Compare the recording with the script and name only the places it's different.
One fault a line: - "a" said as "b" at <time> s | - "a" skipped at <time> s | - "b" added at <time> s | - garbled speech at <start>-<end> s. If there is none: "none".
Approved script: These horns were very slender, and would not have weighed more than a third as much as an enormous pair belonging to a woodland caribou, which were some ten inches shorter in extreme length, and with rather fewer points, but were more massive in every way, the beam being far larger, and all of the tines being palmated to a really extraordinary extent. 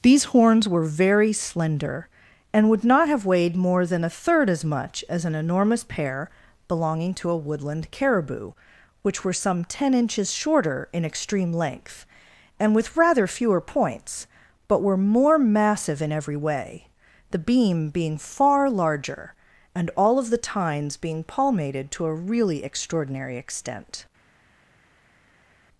none